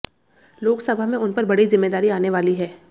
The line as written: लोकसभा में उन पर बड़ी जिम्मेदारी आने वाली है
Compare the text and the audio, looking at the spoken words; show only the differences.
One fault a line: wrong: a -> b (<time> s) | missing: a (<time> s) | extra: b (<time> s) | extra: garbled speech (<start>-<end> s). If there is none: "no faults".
no faults